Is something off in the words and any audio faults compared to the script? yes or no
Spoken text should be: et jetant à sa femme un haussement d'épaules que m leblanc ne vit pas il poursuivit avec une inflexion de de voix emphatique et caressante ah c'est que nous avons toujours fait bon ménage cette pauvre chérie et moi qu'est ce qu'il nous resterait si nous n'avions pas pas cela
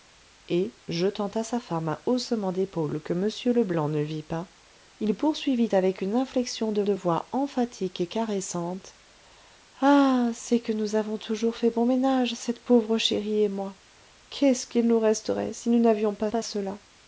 no